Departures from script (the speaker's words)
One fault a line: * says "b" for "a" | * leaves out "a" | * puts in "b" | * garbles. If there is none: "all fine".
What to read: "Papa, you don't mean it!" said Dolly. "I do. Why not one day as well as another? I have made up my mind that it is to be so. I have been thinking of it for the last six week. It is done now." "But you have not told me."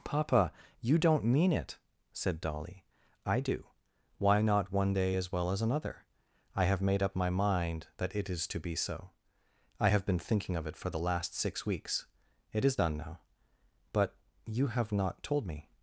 * says "weeks" for "week"